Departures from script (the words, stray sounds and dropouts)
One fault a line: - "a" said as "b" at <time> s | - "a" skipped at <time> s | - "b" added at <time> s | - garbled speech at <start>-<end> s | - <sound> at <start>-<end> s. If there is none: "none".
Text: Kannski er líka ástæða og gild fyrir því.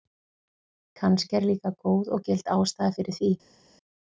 - "ástæða" said as "góð" at 1.9 s
- "ástæða" added at 2.6 s